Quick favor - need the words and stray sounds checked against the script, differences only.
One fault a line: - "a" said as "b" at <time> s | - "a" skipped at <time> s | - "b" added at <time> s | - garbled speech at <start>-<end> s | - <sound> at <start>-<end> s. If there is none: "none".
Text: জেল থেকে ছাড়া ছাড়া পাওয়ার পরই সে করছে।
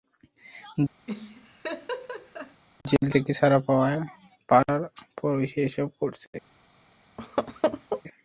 - laugh at 1.1-2.6 s
- "ছাড়া" skipped at 3.6 s
- "এসব" added at 5.7 s
- laugh at 7.2-8.0 s